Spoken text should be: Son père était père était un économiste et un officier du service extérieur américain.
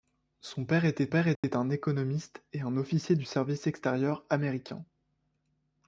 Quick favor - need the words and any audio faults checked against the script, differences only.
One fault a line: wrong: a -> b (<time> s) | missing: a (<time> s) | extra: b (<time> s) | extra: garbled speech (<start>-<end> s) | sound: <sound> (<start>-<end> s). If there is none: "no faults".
sound: dropout (1.4-1.4 s)